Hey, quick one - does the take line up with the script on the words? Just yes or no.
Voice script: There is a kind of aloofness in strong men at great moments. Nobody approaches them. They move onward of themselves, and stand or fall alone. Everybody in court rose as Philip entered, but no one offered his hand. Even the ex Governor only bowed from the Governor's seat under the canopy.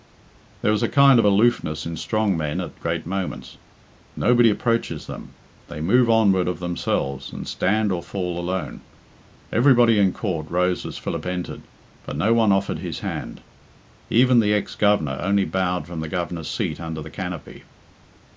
yes